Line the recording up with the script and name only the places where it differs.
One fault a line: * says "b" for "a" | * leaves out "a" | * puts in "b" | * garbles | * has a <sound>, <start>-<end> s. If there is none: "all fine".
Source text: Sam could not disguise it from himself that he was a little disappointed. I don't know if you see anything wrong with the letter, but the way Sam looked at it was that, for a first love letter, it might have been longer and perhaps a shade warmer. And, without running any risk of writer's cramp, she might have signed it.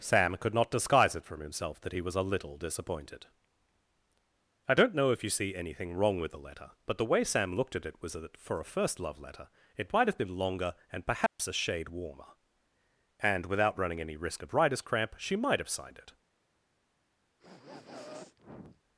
* has a dropout, 11.3-11.4 s
* has a sniff, 17.4-18.8 s